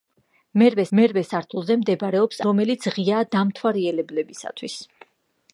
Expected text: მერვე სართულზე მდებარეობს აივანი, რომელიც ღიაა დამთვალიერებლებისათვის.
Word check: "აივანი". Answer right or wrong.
wrong